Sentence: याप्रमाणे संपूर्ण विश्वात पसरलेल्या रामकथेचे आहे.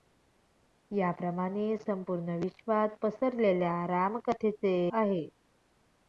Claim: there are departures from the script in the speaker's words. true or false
false